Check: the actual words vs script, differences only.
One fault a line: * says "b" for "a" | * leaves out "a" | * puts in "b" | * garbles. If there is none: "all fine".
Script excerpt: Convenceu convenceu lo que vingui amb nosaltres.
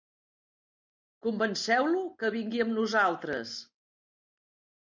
* leaves out "convenceu"